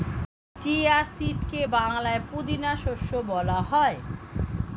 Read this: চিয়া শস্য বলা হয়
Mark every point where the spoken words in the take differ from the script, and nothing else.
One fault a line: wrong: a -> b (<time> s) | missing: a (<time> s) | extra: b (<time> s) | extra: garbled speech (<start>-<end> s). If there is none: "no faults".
extra: সিডকে বাংলায় পুদিনা (1.1 s)